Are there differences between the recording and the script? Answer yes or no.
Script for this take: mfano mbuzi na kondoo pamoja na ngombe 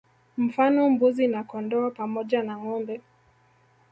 no